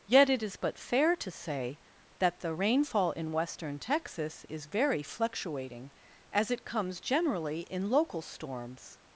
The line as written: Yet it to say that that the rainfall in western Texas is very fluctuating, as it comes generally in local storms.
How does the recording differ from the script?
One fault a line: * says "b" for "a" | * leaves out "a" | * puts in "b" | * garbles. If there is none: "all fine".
* puts in "is but fair"
* leaves out "that"